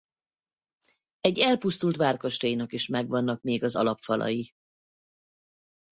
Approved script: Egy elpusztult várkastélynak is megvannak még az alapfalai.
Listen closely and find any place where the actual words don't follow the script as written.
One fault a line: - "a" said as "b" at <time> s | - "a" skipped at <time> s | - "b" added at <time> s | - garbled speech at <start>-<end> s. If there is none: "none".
none